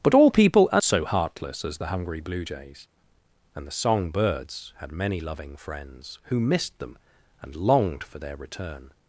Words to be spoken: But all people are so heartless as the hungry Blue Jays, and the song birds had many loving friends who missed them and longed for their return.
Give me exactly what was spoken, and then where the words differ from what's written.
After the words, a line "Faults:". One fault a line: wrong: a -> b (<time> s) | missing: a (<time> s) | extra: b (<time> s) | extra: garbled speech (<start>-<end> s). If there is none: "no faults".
But all people are so heartless as the hungry Blue Jays, and the song birds had many loving friends who missed them and longed for their return.
Faults:
no faults